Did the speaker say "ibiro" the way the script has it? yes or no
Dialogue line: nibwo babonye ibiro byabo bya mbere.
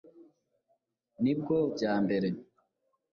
no